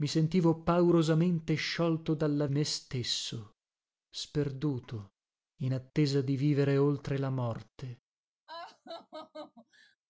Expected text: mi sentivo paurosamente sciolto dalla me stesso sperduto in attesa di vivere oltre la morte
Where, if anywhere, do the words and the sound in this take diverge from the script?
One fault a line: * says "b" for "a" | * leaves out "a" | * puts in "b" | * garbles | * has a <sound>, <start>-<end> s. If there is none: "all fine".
* has a laugh, 8.5-10.0 s